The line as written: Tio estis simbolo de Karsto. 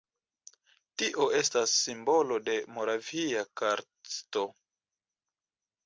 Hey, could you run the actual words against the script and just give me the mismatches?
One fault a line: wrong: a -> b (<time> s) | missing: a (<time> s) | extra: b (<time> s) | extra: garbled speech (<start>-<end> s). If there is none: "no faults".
wrong: estis -> estas (1.4 s)
extra: Moravia (2.8 s)